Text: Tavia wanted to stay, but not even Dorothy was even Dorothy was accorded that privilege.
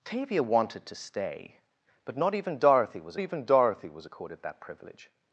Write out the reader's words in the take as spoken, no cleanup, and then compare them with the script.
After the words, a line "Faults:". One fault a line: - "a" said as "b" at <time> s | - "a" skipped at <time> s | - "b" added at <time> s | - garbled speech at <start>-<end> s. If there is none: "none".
Tavia wanted to stay, but not even Dorothy was even Dorothy was accorded that privilege.
Faults:
none